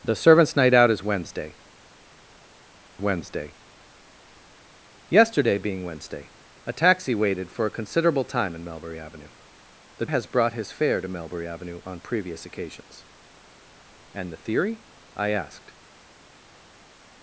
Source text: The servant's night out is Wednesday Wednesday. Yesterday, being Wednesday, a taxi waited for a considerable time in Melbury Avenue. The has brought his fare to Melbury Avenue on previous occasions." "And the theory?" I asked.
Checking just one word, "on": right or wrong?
right